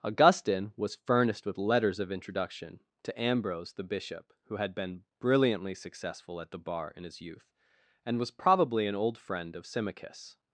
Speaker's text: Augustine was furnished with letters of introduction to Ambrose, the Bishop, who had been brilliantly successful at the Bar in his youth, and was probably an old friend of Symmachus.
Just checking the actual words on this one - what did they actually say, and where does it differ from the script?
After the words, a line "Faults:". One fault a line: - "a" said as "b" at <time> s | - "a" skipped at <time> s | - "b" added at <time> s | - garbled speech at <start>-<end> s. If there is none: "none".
Augustine was furnished with letters of introduction to Ambrose, the Bishop, who had been brilliantly successful at the Bar in his youth, and was probably an old friend of Symmachus.
Faults:
none